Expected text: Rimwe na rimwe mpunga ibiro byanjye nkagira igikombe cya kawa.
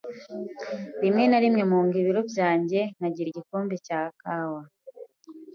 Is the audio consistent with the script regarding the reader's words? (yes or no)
yes